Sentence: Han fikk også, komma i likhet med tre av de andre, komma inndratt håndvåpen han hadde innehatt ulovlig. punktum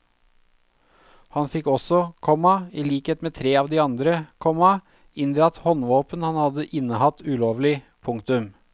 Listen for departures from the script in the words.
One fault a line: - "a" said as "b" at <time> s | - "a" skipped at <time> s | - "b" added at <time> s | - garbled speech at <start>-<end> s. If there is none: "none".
none